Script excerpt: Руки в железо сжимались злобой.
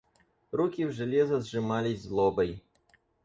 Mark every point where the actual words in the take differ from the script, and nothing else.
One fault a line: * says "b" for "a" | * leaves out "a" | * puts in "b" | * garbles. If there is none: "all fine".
all fine